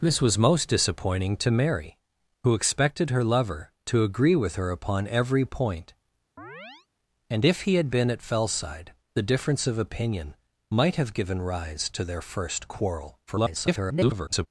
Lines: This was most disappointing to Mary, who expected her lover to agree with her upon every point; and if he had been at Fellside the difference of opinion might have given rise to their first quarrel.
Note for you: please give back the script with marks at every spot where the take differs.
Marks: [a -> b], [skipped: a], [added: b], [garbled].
This was most disappointing to Mary, who expected her lover to agree with her upon every point; and if he had been at Fellside the difference of opinion might have given rise to their first quarrel. [garbled]